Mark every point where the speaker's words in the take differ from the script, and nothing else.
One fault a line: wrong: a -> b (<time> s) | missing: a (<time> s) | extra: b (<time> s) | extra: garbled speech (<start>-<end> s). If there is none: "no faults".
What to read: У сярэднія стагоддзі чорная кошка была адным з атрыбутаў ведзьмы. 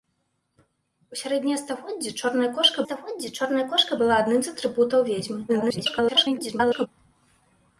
extra: стагоддзі чорная кошка (2.8 s)
extra: garbled speech (5.5-6.9 s)